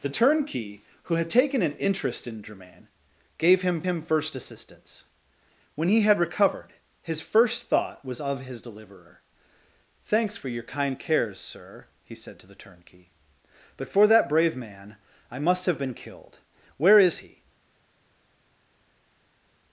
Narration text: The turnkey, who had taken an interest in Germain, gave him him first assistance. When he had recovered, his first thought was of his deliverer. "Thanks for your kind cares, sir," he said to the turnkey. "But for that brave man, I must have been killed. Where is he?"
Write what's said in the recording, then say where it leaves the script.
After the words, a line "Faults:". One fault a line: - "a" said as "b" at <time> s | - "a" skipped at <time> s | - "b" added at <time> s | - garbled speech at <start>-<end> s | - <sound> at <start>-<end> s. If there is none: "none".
The turnkey, who had taken an interest in Germain, gave him him first assistance. When he had recovered, his first thought was of his deliverer. "Thanks for your kind cares, sir," he said to the turnkey. "But for that brave man, I must have been killed. Where is he?"
Faults:
none